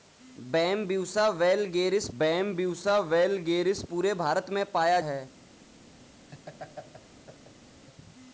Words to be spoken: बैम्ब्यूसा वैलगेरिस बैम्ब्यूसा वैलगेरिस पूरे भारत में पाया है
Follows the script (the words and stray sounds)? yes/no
no